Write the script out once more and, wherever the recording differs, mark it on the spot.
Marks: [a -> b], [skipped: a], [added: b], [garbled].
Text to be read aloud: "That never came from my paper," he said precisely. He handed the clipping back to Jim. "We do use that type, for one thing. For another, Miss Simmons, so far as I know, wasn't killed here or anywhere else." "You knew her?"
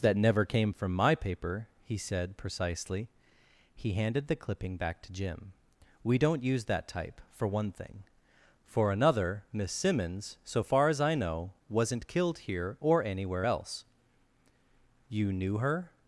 "That never came from my paper," he said precisely. He handed the clipping back to Jim. "We [do -> don't] use that type, for one thing. For another, Miss Simmons, so far as I know, wasn't killed here or anywhere else." "You knew her?"